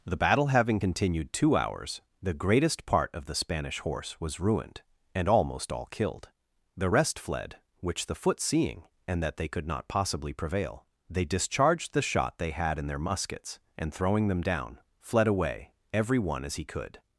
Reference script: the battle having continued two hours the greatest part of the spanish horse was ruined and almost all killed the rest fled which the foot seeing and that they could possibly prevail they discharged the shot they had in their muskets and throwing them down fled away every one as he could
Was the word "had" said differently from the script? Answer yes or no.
no